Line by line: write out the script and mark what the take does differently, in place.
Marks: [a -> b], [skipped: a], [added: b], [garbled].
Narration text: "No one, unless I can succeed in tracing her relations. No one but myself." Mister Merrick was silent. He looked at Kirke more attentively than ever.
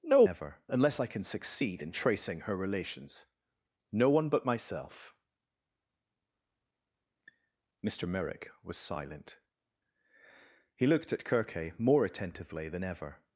"No [one, -> ever] unless I can succeed in tracing her relations. No one but myself." Mister Merrick was silent. He looked at Kirke more attentively than ever.